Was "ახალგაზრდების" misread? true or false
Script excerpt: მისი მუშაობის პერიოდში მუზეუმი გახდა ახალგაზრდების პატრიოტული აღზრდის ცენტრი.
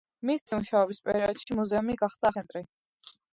true